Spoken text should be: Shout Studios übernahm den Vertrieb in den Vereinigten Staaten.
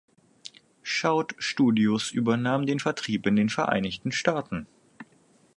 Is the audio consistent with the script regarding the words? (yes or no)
yes